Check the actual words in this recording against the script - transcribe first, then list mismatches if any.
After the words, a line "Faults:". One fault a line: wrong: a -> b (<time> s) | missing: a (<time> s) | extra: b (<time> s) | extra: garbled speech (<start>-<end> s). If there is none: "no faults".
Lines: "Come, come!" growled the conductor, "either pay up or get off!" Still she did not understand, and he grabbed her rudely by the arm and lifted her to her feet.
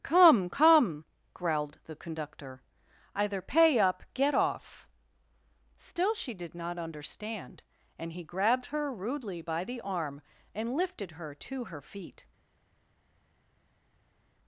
"Come, come!" growled the conductor, "either pay up get off!" Still she did not understand, and he grabbed her rudely by the arm and lifted her to her feet.
Faults:
missing: or (4.0 s)